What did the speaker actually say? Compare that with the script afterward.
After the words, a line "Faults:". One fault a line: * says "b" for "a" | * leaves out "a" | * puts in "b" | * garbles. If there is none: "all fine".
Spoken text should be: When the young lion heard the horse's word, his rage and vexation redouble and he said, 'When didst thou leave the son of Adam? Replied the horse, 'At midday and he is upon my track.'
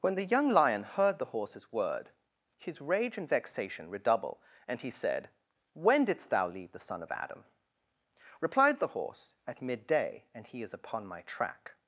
When the young lion heard the horse's word, his rage and vexation redouble and he said, 'When didst thou leave the son of Adam? Replied the horse, 'At midday and he is upon my track.'
Faults:
all fine